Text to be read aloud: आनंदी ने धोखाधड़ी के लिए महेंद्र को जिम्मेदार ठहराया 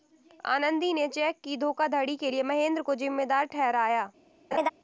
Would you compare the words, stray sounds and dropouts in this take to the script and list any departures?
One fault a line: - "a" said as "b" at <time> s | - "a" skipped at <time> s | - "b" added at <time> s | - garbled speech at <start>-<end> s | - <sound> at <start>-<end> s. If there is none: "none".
- "चेक की" added at 1.1 s
- laugh at 4.5-4.7 s